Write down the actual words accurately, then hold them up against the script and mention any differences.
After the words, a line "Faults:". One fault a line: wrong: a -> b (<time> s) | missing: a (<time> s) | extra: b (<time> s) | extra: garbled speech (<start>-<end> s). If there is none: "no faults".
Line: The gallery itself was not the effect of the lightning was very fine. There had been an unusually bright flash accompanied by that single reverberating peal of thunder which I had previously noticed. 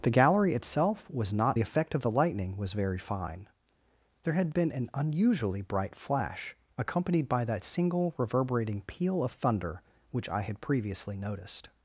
The gallery itself was not the effect of the lightning was very fine. There had been an unusually bright flash accompanied by that single reverberating peal of thunder which I had previously noticed.
Faults:
no faults